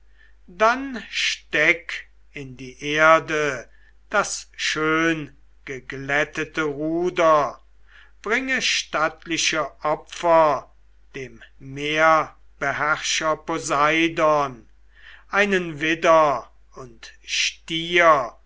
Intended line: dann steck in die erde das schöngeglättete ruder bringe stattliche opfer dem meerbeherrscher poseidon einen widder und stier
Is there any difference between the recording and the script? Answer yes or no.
no